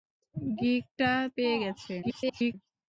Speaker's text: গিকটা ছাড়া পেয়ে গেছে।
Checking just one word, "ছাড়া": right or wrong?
wrong